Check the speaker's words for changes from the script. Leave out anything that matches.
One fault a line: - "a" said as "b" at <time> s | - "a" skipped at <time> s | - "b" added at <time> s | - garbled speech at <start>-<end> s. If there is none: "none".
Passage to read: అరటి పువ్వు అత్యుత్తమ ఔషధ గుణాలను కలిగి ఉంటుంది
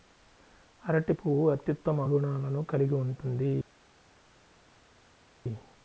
- "ఔషధ" skipped at 2.0 s